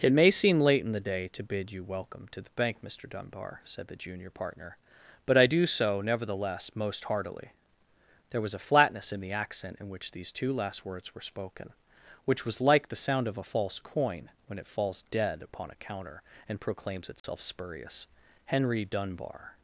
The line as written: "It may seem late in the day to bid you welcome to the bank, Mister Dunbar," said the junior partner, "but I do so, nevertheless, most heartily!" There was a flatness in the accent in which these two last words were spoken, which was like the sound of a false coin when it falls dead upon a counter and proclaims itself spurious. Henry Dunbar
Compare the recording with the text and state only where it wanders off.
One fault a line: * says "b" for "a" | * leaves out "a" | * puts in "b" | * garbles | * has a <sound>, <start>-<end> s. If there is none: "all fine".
* has a dropout, 17.2-17.2 s